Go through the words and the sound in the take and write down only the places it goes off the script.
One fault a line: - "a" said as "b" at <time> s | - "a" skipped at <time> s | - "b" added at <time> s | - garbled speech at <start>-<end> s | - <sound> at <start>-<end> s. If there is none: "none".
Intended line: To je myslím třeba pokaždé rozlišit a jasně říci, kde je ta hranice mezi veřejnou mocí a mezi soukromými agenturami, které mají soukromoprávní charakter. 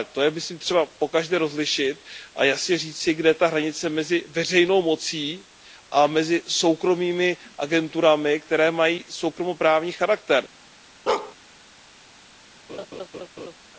- bark at 11.1-11.4 s
- laugh at 12.7-13.5 s